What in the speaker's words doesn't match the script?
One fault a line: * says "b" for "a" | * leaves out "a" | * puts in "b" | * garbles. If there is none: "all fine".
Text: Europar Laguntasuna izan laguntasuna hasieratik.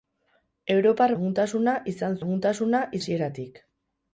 all fine